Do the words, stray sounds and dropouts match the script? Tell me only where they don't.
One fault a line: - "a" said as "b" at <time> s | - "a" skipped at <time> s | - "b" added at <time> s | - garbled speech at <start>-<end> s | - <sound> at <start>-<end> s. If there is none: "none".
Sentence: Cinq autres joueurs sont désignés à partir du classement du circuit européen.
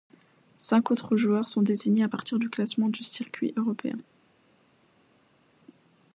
none